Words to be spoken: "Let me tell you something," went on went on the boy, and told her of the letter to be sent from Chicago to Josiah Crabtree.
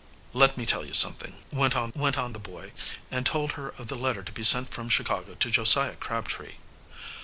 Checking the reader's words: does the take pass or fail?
pass